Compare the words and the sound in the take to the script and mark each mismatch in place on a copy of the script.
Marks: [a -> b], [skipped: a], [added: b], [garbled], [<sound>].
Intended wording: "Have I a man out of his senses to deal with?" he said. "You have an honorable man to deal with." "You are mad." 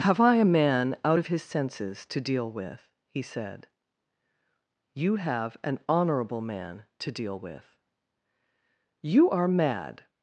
"Have I a man out of his senses to deal with?" he said. "You have an honorable man to deal with." "You are mad."